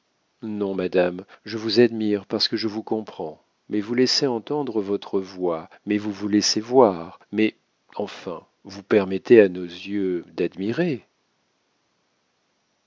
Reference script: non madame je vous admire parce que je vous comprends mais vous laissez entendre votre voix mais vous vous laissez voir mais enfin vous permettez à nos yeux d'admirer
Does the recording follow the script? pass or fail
pass